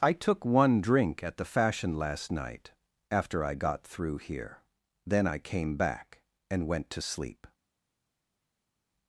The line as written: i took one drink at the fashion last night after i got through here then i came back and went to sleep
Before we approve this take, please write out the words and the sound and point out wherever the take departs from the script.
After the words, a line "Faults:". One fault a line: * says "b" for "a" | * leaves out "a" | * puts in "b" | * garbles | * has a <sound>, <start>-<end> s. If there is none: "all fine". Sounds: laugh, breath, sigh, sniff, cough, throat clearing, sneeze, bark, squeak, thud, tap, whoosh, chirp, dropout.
i took one drink at the fashion last night after i got through here then i came back and went to sleep
Faults:
all fine